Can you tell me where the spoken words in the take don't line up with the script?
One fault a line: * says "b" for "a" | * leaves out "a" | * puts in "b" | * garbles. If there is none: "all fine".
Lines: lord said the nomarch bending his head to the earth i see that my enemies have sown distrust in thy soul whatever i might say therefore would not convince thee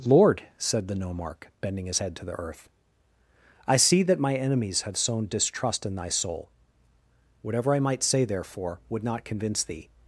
all fine